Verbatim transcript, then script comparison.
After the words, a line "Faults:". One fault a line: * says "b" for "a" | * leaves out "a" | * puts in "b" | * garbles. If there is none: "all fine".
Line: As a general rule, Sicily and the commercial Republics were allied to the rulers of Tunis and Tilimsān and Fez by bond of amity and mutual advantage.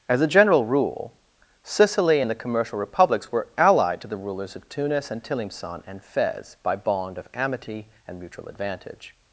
As a general rule, Sicily and the commercial Republics were allied to the rulers of Tunis and Tilimsān and Fez by bond of amity and mutual advantage.
Faults:
all fine